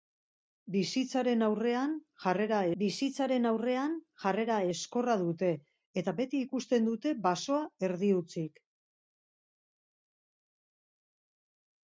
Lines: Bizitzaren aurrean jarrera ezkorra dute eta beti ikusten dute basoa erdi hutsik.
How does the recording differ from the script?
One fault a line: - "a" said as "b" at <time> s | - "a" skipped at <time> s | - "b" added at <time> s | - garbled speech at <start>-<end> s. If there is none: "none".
- "bizitzaren aurrean jarrera" added at 2.8 s